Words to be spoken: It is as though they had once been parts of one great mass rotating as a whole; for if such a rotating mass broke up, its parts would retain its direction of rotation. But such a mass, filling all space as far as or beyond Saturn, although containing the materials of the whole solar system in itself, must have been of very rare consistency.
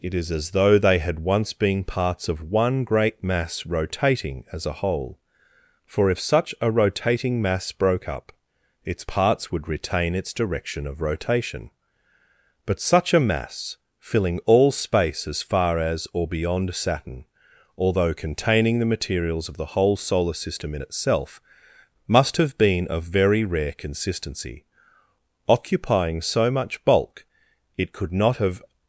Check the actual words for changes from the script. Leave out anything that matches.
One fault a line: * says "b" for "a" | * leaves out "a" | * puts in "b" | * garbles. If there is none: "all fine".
* puts in "Occupying so much bulk it could not have"